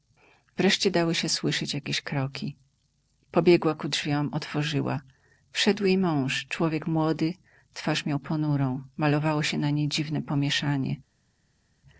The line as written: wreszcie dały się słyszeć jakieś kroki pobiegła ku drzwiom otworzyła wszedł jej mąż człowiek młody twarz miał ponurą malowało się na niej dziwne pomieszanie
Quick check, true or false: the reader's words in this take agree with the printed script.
true